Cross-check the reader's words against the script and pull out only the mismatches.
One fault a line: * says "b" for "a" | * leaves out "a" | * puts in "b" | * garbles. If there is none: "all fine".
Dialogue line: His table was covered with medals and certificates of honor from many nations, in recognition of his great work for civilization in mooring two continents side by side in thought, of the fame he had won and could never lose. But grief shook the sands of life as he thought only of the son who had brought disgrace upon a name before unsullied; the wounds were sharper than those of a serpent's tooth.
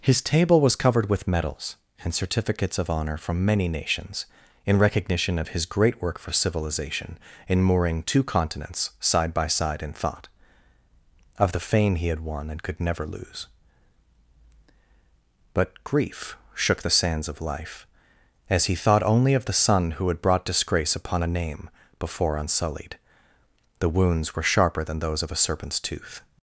all fine